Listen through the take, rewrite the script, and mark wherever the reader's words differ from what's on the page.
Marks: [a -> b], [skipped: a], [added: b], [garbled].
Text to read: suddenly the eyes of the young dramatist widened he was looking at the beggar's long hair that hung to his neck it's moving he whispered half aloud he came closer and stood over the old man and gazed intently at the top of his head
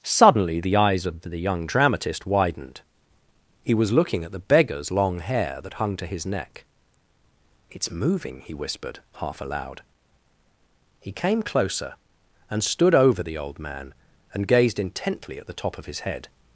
suddenly the eyes of the young dramatist widened he was looking at the beggar's long hair that hung to his neck it's moving he whispered half aloud he came closer and stood over the old man and gazed intently at the top of his head